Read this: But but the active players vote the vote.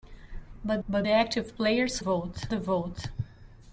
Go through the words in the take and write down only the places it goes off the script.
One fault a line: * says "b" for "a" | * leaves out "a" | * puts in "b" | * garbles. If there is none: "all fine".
all fine